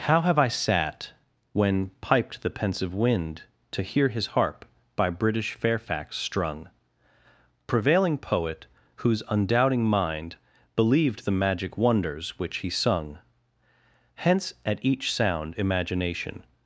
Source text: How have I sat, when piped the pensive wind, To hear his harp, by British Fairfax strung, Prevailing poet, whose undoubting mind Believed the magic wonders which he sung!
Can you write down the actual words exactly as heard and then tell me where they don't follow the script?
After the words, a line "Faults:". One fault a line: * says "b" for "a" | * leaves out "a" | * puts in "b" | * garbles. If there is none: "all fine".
How have I sat, when piped the pensive wind, To hear his harp, by British Fairfax strung, Prevailing poet, whose undoubting mind Believed the magic wonders which he sung! Hence at each sound imagination
Faults:
* puts in "Hence at each sound imagination"